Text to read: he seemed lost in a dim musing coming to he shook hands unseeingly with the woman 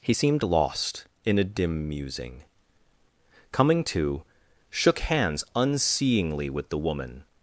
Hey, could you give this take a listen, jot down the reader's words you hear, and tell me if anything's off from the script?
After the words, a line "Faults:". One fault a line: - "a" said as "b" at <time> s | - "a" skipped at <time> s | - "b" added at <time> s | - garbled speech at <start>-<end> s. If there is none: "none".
he seemed lost in a dim musing coming to shook hands unseeingly with the woman
Faults:
- "he" skipped at 4.2 s